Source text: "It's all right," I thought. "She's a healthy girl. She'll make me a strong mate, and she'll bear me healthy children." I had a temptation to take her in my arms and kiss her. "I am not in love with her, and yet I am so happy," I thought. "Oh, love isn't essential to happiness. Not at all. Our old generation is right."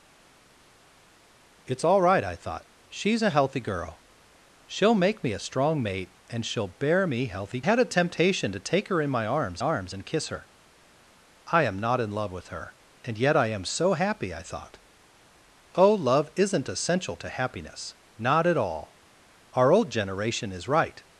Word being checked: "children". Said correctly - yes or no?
no